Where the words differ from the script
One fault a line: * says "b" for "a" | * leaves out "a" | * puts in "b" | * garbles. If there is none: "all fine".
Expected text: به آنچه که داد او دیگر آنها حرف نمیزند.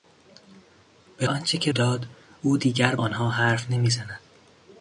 all fine